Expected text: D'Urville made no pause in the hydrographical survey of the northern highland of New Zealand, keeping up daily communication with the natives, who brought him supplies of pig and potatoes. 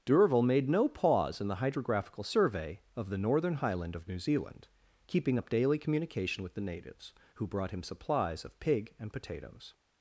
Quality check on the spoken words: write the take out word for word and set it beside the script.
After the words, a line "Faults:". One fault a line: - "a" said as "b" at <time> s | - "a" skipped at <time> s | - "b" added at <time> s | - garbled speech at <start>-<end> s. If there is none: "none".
D'Urville made no pause in the hydrographical survey of the northern highland of New Zealand, keeping up daily communication with the natives, who brought him supplies of pig and potatoes.
Faults:
none